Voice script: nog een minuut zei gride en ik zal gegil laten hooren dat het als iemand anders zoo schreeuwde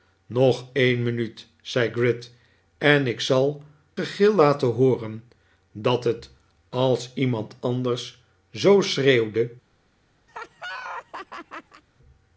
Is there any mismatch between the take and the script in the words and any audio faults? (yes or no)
yes